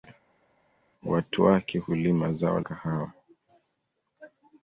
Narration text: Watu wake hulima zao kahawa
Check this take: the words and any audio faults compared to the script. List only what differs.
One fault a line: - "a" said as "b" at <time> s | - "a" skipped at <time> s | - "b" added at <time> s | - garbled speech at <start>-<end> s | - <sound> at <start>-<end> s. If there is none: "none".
none